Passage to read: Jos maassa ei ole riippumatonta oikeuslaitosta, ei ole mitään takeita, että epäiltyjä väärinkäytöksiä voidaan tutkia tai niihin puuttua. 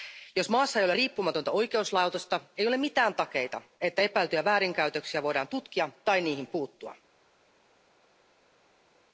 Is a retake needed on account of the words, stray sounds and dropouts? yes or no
no